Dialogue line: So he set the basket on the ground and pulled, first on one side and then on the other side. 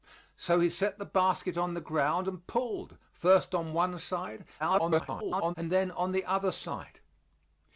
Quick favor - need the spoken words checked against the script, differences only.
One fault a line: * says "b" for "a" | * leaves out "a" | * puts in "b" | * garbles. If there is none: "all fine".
* garbles